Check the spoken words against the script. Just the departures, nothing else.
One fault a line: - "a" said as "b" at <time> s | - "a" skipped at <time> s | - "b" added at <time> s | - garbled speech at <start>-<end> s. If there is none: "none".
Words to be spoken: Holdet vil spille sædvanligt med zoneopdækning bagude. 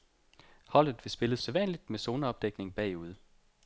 none